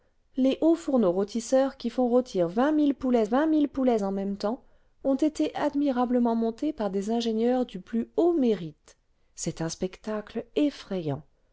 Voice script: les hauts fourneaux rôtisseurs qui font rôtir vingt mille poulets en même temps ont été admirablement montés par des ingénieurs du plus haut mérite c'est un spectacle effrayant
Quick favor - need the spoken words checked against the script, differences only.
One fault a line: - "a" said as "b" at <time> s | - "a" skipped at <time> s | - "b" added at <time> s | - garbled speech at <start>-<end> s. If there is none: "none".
- "vingt mille poulets" added at 3.2 s